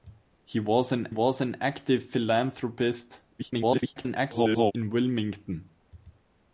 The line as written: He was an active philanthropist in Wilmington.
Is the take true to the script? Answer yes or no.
no